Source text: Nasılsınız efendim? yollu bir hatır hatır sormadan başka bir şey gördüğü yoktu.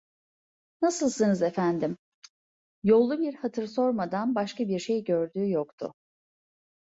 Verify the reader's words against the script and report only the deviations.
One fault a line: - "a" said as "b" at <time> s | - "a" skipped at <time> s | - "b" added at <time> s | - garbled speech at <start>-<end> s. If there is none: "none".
- "hatır" skipped at 3.7 s